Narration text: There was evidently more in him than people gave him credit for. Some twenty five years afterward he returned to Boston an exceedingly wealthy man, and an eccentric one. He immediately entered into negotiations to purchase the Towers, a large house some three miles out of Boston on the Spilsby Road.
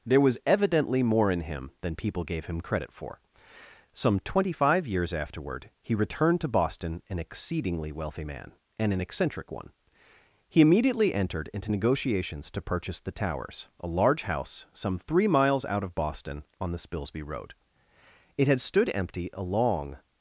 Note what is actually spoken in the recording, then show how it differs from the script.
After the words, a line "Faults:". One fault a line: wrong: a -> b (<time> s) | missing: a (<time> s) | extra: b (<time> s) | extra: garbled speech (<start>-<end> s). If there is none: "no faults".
There was evidently more in him than people gave him credit for. Some twenty five years afterward he returned to Boston an exceedingly wealthy man, and an eccentric one. He immediately entered into negotiations to purchase the Towers, a large house some three miles out of Boston on the Spilsby Road. It had stood empty a long
Faults:
extra: It had stood empty a long (18.4 s)